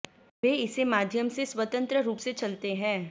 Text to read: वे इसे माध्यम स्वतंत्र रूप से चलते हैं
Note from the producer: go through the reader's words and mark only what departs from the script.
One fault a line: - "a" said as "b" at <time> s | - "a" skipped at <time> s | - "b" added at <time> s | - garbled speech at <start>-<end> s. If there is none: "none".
- "से" added at 1.3 s